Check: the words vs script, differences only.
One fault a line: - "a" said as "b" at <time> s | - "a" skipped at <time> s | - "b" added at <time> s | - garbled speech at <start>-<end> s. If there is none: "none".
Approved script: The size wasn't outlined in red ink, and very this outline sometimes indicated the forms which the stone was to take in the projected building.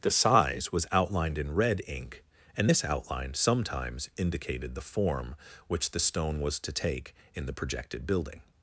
- "wasn't" said as "was" at 0.7 s
- "very" skipped at 2.7 s
- "forms" said as "form" at 4.9 s